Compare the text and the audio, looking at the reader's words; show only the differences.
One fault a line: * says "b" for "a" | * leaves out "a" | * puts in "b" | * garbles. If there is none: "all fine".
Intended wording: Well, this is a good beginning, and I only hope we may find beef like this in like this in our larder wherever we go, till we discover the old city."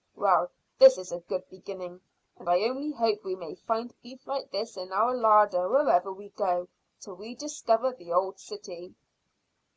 * leaves out "like this in"